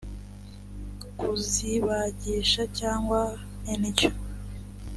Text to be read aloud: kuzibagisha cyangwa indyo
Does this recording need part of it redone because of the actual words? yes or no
no